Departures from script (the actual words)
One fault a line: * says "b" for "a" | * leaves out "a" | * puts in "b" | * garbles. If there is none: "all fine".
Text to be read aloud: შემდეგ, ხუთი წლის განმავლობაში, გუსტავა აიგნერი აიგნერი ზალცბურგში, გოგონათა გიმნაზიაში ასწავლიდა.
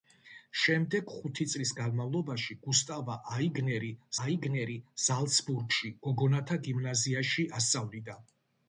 all fine